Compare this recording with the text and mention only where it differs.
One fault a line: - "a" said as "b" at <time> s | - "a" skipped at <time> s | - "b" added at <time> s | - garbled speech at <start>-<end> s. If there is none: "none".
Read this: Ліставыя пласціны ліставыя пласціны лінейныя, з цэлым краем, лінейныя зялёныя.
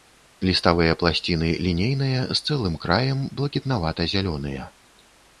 - "ліставыя пласціны" skipped at 1.5 s
- "лінейныя" said as "блакітнавата" at 3.4 s